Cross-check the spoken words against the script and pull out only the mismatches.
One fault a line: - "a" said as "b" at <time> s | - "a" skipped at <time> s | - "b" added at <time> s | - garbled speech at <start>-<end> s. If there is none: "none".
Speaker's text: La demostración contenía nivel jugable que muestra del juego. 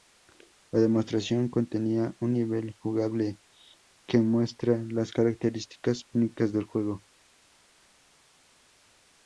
- "un" added at 2.2 s
- "las características únicas" added at 4.9 s